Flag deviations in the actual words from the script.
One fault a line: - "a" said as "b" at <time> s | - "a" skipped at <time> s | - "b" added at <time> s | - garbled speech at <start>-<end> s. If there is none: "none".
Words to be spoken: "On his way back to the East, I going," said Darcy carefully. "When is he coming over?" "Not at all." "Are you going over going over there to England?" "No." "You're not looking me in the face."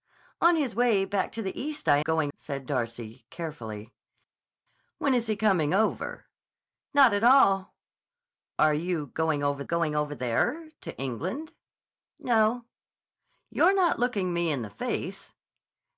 none